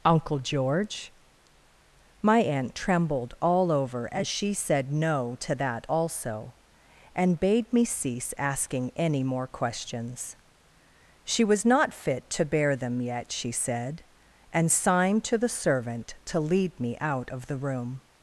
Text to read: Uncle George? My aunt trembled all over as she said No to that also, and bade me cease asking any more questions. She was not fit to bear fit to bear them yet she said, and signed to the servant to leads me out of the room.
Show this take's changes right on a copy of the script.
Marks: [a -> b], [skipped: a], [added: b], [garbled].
Uncle George? My aunt trembled all over as she said No to that also, and bade me cease asking any more questions. She was not fit to bear [skipped: fit to bear] them yet she said, and signed to the servant to [leads -> lead] me out of the room.